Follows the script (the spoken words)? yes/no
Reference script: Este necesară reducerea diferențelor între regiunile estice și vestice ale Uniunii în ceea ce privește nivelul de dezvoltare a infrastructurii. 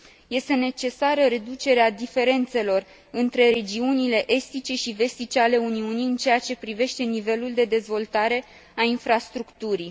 yes